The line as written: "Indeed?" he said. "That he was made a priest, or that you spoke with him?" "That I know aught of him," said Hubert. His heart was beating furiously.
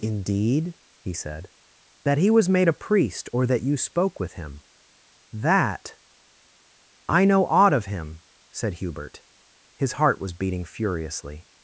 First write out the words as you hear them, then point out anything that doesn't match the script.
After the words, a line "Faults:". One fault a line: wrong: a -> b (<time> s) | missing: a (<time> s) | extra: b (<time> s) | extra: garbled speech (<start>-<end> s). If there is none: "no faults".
"Indeed?" he said. "That he was made a priest, or that you spoke with him?" "That I know aught of him," said Hubert. His heart was beating furiously.
Faults:
no faults